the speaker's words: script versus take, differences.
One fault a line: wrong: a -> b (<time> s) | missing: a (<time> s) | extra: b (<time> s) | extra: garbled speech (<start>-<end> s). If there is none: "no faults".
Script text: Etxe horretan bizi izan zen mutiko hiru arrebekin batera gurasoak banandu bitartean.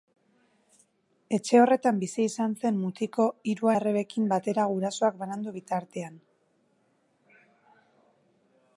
no faults